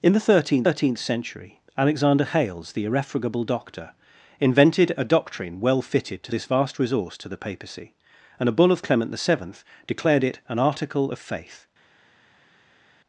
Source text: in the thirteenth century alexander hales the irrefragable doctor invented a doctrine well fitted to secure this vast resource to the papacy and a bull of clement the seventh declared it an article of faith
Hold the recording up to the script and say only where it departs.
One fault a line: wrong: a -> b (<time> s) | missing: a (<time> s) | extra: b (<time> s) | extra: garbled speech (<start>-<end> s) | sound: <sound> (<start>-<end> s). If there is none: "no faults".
extra: thirteenth (0.6 s)
missing: secure (6.3 s)